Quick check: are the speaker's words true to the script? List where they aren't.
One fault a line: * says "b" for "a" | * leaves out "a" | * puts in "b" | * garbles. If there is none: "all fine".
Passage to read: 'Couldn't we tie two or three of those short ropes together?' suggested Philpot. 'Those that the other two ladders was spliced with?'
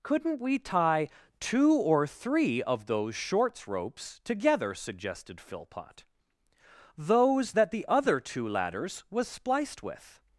* says "shorts" for "short"